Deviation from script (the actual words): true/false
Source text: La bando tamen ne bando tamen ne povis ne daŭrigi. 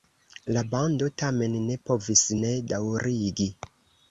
true